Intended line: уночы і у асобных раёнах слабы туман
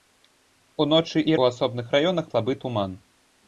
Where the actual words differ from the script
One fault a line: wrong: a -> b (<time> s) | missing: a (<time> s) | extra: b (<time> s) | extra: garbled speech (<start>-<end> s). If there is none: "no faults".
no faults